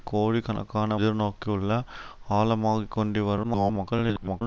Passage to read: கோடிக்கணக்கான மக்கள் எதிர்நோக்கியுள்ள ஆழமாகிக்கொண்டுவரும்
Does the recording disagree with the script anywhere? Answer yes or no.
yes